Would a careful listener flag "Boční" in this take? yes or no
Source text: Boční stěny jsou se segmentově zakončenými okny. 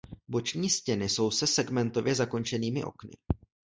no